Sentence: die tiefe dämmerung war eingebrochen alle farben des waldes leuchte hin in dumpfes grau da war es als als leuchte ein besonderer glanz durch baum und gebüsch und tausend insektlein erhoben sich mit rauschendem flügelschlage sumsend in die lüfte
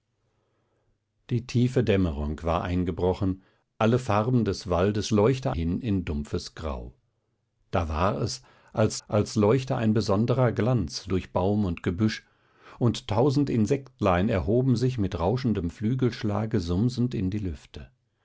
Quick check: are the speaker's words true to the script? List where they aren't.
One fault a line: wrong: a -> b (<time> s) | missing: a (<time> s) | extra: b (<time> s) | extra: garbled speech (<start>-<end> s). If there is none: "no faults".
no faults